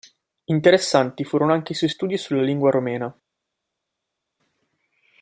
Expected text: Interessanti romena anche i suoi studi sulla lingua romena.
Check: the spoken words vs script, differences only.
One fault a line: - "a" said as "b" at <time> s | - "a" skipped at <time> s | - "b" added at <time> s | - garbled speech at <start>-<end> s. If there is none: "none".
- "romena" said as "furono" at 1.2 s